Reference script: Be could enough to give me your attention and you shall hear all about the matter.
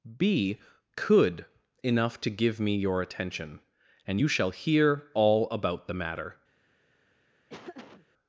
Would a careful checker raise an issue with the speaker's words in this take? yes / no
no